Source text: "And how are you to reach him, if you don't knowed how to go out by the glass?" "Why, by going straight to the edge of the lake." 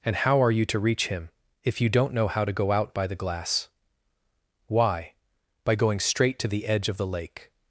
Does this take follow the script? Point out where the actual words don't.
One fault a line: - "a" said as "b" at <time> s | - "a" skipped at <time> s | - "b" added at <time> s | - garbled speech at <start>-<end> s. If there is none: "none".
- "knowed" said as "know" at 2.1 s